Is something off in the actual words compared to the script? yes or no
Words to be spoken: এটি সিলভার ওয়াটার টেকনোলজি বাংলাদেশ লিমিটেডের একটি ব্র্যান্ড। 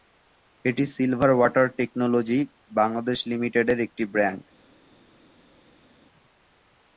no